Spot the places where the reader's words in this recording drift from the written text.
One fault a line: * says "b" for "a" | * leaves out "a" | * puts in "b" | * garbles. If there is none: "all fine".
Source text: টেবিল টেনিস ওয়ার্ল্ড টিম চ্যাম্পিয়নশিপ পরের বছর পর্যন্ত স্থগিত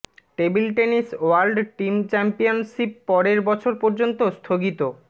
all fine